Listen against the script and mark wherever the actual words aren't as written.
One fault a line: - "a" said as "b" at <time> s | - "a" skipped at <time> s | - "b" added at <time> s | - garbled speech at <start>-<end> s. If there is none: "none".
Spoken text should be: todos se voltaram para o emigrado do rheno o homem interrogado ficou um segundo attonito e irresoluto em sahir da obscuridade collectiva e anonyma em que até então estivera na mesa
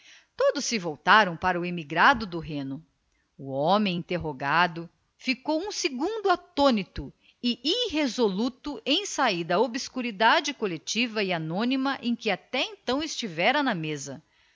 none